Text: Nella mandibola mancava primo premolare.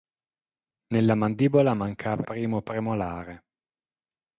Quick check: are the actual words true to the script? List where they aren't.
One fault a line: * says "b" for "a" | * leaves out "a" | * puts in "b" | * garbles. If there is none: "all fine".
all fine